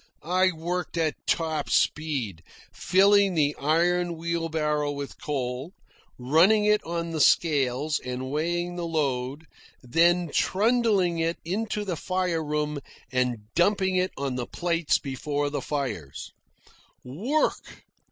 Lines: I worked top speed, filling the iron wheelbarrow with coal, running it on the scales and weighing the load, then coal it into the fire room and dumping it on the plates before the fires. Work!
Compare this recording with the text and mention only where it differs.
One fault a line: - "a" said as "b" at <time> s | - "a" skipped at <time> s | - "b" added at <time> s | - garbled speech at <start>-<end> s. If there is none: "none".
- "at" added at 1.0 s
- "coal" said as "trundling" at 10.3 s